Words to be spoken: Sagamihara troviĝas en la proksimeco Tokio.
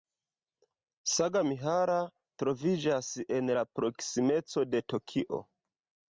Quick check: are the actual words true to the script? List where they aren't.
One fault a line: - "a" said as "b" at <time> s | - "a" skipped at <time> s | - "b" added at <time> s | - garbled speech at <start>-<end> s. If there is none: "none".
- "de" added at 4.7 s